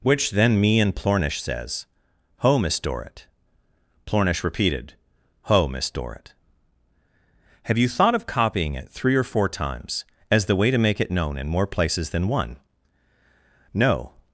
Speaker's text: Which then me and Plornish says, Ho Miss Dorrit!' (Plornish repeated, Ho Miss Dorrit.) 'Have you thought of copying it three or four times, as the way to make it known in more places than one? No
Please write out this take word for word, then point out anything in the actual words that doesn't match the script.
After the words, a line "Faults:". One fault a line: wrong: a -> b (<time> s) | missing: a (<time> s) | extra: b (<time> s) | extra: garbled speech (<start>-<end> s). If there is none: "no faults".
Which then me and Plornish says, Ho Miss Dorrit!' (Plornish repeated, Ho Miss Dorrit.) 'Have you thought of copying it three or four times, as the way to make it known in more places than one? No
Faults:
no faults